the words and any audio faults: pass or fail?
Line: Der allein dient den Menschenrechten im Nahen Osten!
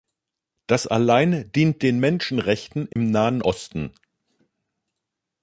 fail